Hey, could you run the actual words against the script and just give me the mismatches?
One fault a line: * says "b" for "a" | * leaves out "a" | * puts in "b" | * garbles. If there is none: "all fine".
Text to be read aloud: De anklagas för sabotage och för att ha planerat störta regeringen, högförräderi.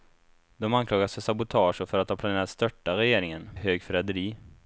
all fine